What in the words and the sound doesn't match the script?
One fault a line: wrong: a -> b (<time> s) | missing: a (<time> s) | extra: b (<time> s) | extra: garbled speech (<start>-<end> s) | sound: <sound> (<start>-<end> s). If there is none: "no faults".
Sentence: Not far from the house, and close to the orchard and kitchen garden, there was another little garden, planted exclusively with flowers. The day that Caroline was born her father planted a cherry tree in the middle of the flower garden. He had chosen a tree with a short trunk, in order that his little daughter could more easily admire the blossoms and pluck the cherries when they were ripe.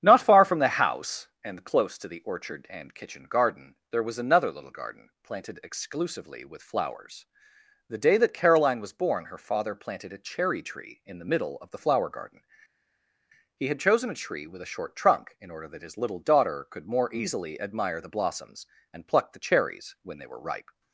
no faults